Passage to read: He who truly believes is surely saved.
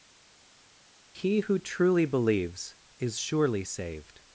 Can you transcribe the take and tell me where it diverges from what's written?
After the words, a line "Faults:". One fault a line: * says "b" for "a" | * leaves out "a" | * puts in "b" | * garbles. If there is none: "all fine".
He who truly believes is surely saved.
Faults:
all fine